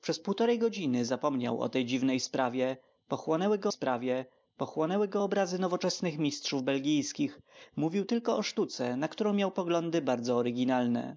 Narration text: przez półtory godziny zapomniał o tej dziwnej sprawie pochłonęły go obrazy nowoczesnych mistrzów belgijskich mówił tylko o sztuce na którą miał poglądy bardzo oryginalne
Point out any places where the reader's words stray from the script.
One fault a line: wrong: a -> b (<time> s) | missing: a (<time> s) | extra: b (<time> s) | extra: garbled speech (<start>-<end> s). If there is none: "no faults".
extra: sprawie pochłonęły go (3.7 s)